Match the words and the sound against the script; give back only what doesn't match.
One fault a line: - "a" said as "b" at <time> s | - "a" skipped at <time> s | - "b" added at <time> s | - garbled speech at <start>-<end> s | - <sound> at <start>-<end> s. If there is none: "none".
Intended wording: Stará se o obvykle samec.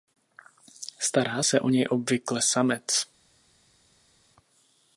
- "něj" added at 1.7 s